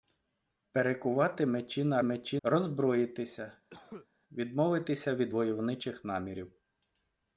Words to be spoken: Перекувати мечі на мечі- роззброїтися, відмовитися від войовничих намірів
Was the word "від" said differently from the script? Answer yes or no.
no